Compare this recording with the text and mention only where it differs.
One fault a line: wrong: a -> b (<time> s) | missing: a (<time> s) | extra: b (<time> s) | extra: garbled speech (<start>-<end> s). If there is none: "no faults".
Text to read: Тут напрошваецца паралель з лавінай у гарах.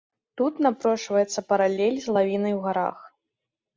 no faults